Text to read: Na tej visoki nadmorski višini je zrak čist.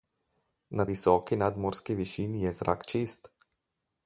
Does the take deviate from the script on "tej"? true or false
true